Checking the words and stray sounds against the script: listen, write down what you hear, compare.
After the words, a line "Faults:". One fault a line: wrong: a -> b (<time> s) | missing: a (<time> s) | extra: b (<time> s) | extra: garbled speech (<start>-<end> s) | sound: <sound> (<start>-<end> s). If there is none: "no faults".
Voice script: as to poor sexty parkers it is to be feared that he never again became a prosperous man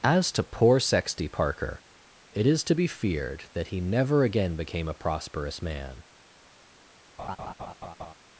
as to poor sexty parker it is to be feared that he never again became a prosperous man
Faults:
wrong: parkers -> parker (1.3 s)
sound: laugh (7.2-8.1 s)